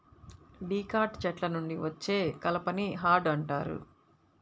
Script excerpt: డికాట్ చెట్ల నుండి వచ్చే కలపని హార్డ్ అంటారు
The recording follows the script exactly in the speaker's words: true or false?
true